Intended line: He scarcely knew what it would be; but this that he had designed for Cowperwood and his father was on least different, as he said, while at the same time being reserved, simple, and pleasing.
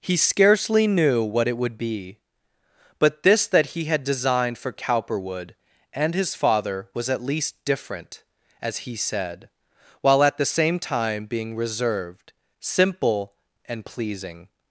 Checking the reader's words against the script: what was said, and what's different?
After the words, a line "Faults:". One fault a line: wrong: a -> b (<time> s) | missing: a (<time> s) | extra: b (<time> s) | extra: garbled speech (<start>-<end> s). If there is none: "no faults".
He scarcely knew what it would be; but this that he had designed for Cowperwood and his father was at least different, as he said, while at the same time being reserved, simple, and pleasing.
Faults:
wrong: on -> at (7.1 s)